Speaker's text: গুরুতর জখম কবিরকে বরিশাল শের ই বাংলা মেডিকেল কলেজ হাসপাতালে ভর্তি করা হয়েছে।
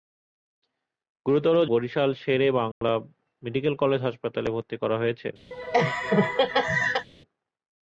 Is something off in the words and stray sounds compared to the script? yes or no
yes